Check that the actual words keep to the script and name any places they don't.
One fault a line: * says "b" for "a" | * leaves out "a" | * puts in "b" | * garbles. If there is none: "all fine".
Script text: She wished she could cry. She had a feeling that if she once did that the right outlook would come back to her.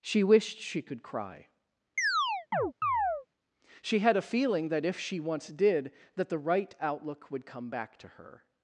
all fine